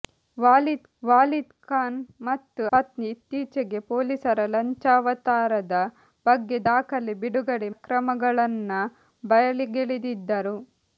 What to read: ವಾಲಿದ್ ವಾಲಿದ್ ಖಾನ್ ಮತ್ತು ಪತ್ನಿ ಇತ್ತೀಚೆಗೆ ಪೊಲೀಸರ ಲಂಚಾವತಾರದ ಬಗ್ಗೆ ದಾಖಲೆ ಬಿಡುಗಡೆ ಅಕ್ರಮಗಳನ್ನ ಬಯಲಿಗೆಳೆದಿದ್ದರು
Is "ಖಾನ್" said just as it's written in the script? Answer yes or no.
yes